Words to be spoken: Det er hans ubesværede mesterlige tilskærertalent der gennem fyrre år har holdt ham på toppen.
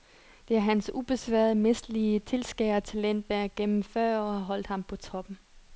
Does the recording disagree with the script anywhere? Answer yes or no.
no